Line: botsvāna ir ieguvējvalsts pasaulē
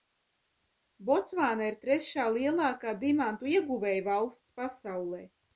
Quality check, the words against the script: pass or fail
fail